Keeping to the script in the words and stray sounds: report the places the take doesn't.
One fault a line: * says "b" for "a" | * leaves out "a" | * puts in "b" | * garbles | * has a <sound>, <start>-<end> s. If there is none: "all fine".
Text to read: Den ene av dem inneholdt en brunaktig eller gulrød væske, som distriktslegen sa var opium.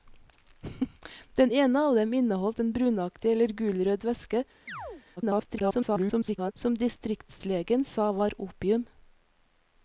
* has a chirp, 4.7-5.0 s
* garbles